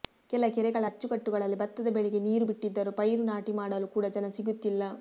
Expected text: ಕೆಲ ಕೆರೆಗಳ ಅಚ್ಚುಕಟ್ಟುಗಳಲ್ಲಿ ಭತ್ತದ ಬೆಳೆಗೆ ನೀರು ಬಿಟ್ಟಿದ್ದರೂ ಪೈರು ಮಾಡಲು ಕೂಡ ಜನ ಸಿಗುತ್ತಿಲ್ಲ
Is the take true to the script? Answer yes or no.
no